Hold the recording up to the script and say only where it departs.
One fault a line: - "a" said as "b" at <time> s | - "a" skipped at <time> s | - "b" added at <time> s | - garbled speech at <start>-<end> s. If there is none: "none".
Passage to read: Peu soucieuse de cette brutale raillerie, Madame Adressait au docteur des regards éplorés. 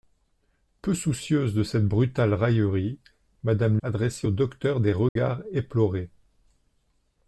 none